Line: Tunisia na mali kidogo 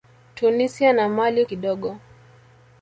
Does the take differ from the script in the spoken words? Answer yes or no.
no